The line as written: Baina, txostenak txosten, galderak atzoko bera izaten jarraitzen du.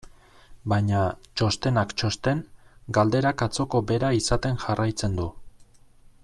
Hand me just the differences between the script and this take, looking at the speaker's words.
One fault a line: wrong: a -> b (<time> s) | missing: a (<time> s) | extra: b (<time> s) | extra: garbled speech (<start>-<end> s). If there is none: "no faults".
no faults